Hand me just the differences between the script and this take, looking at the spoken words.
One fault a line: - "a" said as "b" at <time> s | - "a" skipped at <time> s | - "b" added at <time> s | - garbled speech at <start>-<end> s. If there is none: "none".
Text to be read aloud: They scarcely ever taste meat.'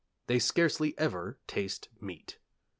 none